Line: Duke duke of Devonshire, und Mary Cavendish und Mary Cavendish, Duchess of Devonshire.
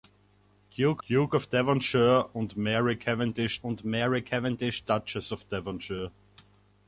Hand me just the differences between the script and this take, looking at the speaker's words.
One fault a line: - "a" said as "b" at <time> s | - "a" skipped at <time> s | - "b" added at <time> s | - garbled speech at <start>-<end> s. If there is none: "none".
none